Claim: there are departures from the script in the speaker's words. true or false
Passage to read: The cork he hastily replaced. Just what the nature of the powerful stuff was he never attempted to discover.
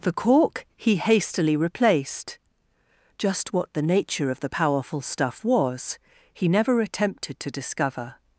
false